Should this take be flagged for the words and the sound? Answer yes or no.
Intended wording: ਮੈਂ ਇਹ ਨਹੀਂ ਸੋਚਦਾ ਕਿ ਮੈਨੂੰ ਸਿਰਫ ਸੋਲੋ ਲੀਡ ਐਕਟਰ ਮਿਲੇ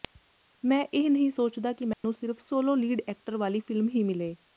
yes